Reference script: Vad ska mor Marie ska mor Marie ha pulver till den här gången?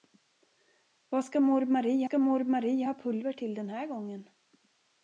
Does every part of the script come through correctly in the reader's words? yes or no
yes